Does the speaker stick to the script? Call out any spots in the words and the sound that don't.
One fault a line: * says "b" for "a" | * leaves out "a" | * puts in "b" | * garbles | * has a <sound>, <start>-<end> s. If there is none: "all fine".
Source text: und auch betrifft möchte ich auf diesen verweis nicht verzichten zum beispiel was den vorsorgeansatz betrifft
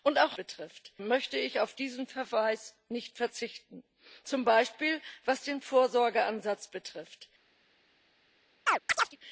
* has a chirp, 8.7-9.2 s